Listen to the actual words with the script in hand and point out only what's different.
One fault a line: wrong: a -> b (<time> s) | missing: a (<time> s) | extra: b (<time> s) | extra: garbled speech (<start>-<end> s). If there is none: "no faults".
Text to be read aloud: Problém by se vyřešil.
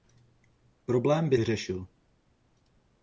missing: se (1.4 s)